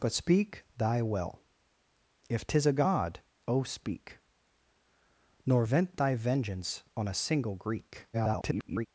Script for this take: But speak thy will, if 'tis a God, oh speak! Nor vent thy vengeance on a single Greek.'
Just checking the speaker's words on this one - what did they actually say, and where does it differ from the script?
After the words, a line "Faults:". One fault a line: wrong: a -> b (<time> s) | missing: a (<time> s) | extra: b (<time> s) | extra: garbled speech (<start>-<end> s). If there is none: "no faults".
But speak thy will, if 'tis a God, oh speak! Nor vent thy vengeance on a single Greek.' [garbled]
Faults:
extra: garbled speech (8.1-8.9 s)